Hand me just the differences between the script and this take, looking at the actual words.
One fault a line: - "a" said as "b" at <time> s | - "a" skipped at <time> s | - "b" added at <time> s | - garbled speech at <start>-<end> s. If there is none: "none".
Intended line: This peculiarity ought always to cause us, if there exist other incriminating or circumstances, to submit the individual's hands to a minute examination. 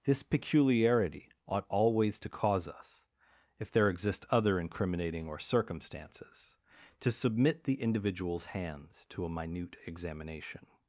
none